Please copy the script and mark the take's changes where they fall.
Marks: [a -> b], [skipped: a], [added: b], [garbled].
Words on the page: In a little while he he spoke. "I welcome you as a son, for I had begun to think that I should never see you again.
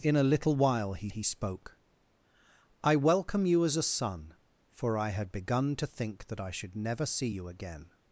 In a little while he he spoke. "I welcome you as a son, for I had begun to think that I should never see you again.